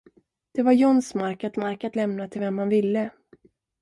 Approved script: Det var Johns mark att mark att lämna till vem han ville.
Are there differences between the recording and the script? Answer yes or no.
no